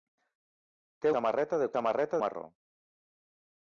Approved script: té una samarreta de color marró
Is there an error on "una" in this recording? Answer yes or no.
yes